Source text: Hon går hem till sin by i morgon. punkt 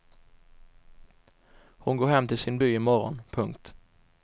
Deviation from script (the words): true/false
false